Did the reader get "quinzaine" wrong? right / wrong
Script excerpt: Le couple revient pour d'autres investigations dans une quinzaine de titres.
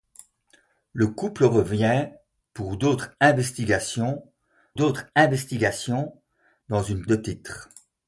wrong